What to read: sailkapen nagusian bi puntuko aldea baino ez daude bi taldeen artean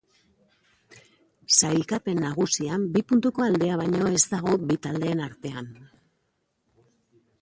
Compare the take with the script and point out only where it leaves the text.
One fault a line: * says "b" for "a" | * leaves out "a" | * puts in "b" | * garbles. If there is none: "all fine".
* says "dago" for "daude"